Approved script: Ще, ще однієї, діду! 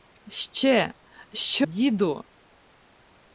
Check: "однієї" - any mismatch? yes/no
yes